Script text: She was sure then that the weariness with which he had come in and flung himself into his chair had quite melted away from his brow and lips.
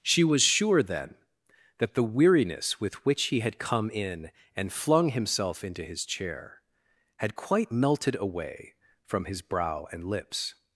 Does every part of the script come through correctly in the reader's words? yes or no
yes